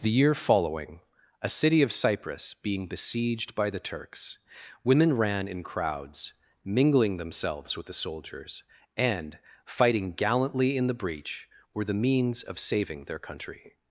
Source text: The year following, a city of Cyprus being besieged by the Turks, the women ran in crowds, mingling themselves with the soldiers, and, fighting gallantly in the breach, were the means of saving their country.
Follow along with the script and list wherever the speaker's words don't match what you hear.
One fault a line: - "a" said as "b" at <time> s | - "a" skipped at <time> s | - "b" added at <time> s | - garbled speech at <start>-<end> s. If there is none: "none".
- "the" skipped at 4.4 s